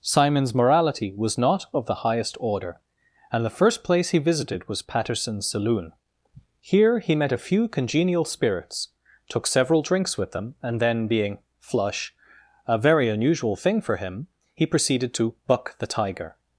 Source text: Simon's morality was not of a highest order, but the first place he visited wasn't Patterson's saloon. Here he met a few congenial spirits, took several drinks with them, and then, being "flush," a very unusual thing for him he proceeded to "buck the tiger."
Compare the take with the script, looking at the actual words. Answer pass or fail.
fail